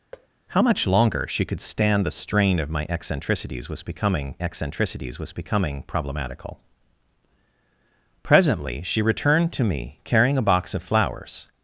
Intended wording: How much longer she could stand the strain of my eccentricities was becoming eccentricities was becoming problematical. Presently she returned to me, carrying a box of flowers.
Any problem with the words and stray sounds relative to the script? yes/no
yes